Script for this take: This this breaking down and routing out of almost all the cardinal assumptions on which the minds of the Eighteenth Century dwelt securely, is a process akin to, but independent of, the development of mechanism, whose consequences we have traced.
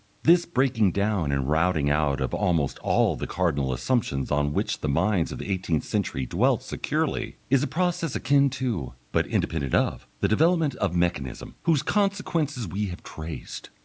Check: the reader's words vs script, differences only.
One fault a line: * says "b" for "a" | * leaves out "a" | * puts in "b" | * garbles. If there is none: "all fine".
* leaves out "this"